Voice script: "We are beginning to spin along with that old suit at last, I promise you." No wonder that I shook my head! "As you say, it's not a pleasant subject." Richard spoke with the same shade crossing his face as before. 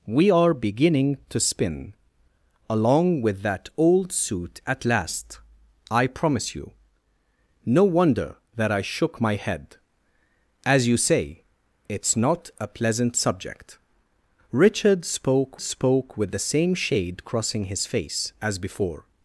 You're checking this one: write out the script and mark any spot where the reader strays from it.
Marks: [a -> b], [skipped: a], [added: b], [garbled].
"We are beginning to spin along with that old suit at last, I promise you." No wonder that I shook my head! "As you say, it's not a pleasant subject." Richard spoke [added: spoke] with the same shade crossing his face as before.